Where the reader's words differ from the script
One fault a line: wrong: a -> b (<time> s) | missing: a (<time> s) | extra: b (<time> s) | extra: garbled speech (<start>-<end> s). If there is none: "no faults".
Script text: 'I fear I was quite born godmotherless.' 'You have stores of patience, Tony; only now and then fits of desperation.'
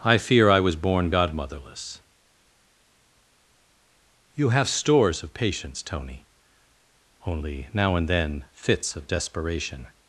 missing: quite (0.8 s)